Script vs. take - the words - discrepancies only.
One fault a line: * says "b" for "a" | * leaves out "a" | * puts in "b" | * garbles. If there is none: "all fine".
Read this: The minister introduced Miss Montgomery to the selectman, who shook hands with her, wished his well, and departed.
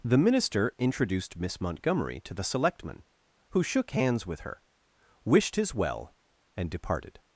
all fine